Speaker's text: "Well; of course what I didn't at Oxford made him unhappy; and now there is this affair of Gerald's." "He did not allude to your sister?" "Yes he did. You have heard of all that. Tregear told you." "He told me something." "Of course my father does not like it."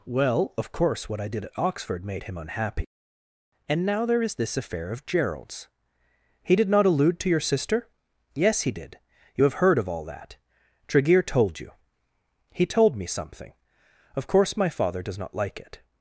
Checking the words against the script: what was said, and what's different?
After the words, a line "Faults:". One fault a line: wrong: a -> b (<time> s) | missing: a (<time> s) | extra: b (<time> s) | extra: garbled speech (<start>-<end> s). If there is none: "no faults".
"Well; of course what I did at Oxford made him unhappy; and now there is this affair of Gerald's." "He did not allude to your sister?" "Yes he did. You have heard of all that. Tregear told you." "He told me something." "Of course my father does not like it."
Faults:
wrong: didn't -> did (1.3 s)